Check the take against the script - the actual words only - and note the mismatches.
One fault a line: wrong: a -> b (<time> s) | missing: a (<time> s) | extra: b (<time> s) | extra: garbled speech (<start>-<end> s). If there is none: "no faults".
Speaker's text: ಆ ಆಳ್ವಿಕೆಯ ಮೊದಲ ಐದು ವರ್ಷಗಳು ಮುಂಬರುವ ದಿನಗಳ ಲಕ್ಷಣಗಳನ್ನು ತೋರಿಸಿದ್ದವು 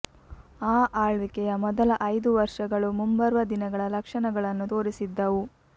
no faults